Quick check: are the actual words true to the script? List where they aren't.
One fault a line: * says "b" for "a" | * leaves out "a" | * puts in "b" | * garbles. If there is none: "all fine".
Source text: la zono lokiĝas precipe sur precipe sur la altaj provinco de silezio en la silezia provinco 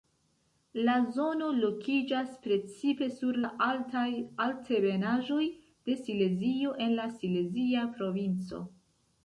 * leaves out "precipe sur"
* says "altebenaĵoj" for "provinco"